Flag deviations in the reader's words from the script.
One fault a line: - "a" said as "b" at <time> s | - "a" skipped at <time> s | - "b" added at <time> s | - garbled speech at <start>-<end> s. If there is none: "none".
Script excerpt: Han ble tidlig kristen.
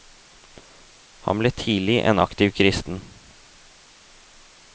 - "en aktiv" added at 2.1 s